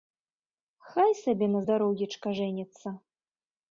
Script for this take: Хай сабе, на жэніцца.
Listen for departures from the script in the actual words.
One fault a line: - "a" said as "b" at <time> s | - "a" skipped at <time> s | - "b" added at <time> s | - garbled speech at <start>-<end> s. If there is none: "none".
- "здароўечка" added at 1.6 s